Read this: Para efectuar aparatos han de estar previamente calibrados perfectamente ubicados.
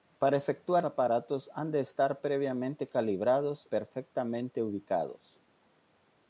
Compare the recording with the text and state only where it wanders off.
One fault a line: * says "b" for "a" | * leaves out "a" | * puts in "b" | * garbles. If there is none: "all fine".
all fine